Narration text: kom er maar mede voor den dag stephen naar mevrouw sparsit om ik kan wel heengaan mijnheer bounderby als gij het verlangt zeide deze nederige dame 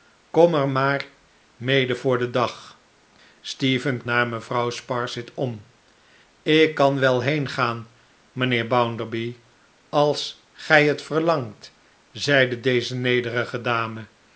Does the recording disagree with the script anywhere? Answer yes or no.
no